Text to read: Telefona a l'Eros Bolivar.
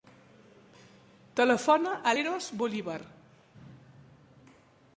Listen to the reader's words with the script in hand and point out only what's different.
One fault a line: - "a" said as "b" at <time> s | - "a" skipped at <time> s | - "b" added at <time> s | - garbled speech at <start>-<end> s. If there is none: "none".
none